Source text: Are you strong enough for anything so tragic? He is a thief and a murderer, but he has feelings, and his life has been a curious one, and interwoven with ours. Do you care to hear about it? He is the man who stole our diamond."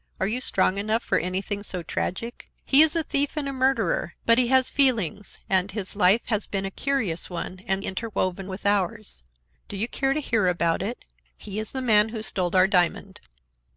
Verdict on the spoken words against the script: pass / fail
pass